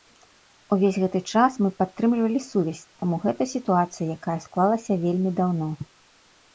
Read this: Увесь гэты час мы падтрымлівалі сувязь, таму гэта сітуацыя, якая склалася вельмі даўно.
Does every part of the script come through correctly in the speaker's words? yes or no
yes